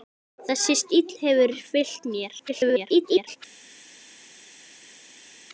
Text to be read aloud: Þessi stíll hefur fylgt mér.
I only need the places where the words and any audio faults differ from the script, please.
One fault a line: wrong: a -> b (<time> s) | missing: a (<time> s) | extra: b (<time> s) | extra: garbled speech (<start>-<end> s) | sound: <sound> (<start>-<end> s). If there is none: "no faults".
extra: garbled speech (2.5-3.4 s)